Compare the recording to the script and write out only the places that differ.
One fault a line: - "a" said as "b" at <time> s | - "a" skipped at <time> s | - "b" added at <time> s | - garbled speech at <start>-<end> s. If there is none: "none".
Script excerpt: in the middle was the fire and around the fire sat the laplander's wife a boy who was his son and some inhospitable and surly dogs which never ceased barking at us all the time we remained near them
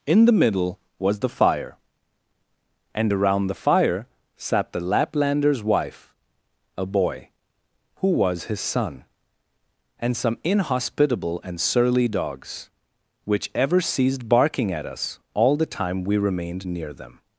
- "never" said as "ever" at 13.6 s